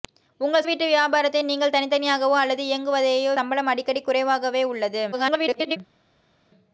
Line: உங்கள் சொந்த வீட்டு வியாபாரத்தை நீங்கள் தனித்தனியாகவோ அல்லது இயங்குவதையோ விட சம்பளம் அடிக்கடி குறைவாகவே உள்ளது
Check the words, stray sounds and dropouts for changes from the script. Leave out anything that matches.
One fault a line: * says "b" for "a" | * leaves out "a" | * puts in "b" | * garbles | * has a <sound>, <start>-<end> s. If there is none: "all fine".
* leaves out "சொந்த"
* leaves out "விட"
* garbles